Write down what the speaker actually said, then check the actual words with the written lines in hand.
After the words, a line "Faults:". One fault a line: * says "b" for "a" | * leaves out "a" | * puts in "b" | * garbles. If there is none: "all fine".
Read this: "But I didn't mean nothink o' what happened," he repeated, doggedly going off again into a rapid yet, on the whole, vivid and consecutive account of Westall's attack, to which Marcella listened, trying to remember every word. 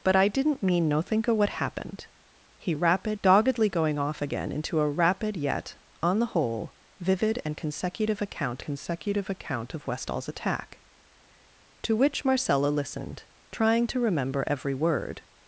"But I didn't mean nothink o' what happened," he rapid, doggedly going off again into a rapid yet, on the whole, vivid and consecutive account consecutive account of Westall's attack, to which Marcella listened, trying to remember every word.
Faults:
* says "rapid" for "repeated"
* puts in "consecutive account"